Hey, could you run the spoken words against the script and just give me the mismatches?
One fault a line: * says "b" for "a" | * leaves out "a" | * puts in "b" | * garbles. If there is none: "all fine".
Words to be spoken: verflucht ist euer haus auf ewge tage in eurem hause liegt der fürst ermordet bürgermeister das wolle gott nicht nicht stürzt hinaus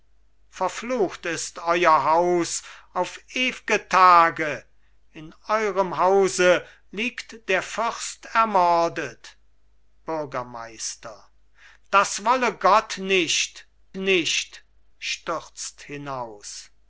all fine